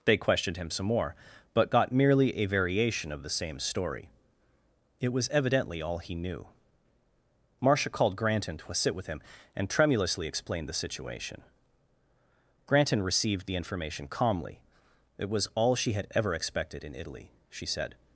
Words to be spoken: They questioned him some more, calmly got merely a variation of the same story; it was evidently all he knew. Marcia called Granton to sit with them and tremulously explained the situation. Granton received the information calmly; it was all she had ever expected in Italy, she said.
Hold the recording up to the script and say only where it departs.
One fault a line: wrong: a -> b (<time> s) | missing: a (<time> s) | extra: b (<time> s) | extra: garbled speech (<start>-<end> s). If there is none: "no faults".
wrong: calmly -> but (1.5 s)
wrong: them -> him (9.1 s)